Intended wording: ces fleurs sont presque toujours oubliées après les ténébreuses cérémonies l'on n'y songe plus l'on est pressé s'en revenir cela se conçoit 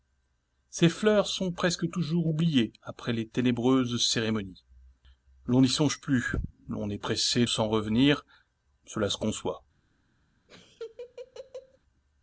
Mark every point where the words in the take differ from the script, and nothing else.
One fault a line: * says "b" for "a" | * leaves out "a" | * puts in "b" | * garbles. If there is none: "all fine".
all fine